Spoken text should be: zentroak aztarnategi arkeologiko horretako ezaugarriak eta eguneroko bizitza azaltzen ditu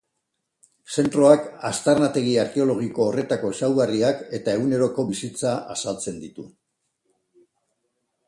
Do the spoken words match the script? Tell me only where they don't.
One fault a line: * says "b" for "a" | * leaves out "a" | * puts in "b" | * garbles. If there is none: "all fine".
all fine